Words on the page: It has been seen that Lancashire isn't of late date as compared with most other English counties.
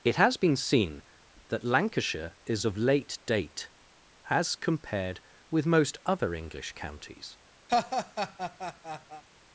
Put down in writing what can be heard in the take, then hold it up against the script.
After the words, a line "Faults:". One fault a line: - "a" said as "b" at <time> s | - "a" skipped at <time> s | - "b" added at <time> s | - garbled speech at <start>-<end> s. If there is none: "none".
It has been seen that Lancashire is of late date as compared with most other English counties.
Faults:
- "isn't" said as "is" at 2.5 s